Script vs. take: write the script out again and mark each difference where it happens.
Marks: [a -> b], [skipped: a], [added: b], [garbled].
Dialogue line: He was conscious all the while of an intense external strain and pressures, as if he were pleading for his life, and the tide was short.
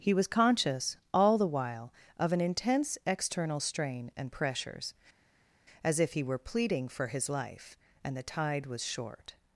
He was conscious all the while of an intense external strain and pressures, as if he were pleading for his life, and the tide was short.